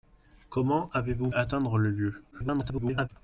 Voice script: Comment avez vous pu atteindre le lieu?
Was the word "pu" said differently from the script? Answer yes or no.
yes